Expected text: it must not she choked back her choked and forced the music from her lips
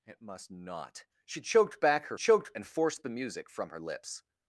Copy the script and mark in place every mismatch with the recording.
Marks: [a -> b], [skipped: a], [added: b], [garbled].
it must not she choked back her choked and forced the music from her lips